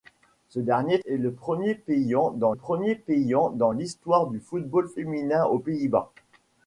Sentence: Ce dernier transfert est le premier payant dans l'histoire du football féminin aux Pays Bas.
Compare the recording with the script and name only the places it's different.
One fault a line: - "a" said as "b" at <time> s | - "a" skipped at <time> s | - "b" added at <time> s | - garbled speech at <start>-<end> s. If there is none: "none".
- "transfert" skipped at 1.0 s
- "premier payant dans" added at 2.5 s